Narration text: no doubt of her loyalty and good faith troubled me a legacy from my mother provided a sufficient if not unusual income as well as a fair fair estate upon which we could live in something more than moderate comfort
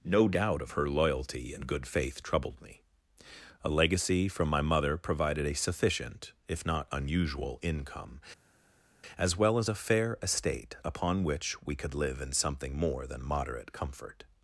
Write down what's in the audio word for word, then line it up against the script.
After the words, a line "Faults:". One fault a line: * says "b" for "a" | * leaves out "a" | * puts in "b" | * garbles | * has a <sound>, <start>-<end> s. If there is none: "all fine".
no doubt of her loyalty and good faith troubled me a legacy from my mother provided a sufficient if not unusual income as well as a fair estate upon which we could live in something more than moderate comfort
Faults:
* leaves out "fair"